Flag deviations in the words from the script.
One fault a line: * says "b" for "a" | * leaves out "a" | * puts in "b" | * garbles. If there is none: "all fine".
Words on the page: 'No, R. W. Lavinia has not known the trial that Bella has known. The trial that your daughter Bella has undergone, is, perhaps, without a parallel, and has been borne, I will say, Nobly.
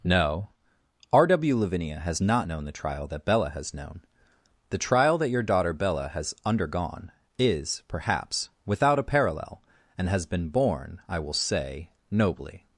all fine